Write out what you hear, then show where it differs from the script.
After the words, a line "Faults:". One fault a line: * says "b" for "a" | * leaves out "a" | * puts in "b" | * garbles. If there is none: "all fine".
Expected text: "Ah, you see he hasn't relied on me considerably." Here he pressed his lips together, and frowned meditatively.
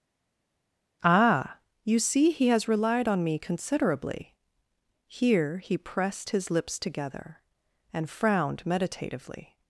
"Ah, you see he has relied on me considerably." Here he pressed his lips together, and frowned meditatively.
Faults:
* says "has" for "hasn't"